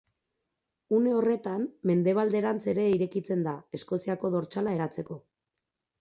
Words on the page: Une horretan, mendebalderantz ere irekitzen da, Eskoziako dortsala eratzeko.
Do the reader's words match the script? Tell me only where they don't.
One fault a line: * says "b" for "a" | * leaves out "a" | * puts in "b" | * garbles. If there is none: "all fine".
all fine